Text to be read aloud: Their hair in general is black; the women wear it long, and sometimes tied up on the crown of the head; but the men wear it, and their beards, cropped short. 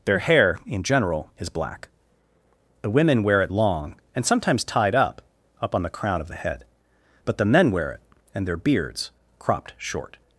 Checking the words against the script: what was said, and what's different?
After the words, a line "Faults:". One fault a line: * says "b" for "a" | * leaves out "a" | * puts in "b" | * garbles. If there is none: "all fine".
Their hair in general is black; the women wear it long, and sometimes tied up up on the crown of the head; but the men wear it, and their beards, cropped short.
Faults:
* puts in "up"